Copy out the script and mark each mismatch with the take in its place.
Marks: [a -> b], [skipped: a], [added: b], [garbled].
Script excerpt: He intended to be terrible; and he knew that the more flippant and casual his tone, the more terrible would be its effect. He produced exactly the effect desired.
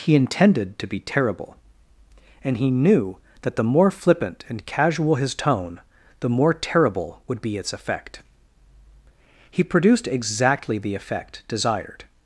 He intended to be terrible; and he knew that the more flippant and casual his tone, the more terrible would be its effect. He produced exactly the effect desired.